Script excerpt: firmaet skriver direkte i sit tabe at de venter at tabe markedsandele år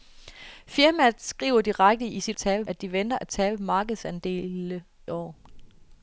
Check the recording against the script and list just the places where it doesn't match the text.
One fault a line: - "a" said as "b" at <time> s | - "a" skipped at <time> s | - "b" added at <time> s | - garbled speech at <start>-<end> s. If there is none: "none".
none